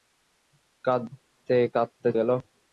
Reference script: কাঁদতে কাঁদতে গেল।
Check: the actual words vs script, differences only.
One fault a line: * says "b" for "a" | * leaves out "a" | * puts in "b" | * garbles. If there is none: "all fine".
all fine